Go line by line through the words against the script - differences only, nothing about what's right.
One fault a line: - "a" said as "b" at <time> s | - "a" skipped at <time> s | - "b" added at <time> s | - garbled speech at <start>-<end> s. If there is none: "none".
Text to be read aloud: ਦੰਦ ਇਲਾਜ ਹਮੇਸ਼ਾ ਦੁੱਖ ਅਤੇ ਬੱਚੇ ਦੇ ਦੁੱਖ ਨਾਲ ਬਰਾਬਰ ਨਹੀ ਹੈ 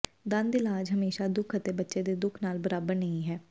none